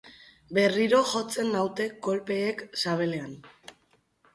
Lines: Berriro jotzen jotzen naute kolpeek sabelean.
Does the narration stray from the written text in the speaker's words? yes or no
yes